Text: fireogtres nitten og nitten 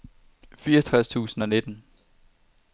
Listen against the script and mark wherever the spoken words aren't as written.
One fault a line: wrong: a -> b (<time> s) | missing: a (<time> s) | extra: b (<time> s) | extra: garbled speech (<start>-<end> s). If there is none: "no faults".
wrong: nitten -> tusind (1.1 s)